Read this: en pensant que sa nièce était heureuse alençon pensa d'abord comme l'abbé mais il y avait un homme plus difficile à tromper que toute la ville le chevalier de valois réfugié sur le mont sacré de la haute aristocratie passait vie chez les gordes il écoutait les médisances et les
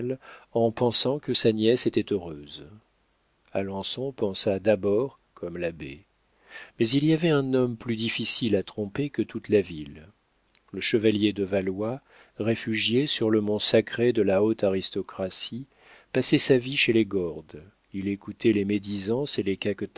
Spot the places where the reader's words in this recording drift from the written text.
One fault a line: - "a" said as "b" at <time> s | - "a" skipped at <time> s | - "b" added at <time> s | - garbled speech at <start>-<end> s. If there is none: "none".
- "sa" added at 16.4 s